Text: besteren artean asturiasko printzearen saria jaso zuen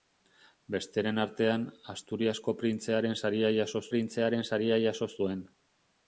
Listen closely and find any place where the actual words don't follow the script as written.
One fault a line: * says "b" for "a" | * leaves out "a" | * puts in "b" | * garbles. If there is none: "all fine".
* puts in "printzearen saria jaso"